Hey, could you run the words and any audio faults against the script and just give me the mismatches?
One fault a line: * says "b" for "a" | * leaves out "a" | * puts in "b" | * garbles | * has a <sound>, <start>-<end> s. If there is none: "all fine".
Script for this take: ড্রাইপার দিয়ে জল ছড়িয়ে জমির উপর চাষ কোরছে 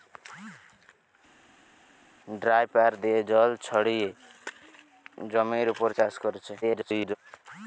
* garbles